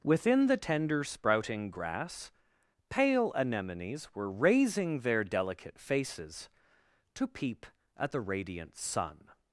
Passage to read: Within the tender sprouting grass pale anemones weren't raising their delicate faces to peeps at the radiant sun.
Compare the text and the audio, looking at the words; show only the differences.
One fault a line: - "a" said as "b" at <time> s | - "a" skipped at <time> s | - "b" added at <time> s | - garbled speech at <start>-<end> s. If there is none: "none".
- "weren't" said as "were" at 4.2 s
- "peeps" said as "peep" at 7.3 s